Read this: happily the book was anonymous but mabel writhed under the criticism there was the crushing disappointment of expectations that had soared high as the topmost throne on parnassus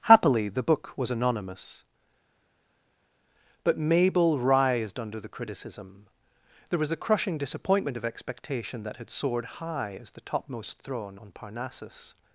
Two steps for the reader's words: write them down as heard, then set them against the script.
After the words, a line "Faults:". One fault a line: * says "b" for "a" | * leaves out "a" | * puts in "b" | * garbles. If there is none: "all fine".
happily the book was anonymous but mabel writhed under the criticism there was the crushing disappointment of expectation that had soared high as the topmost throne on parnassus
Faults:
* says "expectation" for "expectations"